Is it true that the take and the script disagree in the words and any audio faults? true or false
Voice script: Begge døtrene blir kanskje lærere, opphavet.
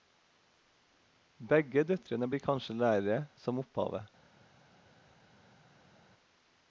true